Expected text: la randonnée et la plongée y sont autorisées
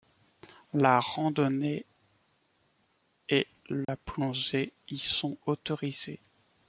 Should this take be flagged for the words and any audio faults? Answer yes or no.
yes